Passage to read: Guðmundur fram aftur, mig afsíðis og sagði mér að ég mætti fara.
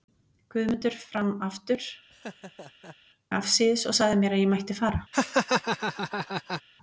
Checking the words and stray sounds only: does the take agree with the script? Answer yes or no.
no